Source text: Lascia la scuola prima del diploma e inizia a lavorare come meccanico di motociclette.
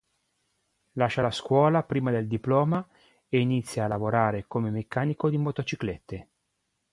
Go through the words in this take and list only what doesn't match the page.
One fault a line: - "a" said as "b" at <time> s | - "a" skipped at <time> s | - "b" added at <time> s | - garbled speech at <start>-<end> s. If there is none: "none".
none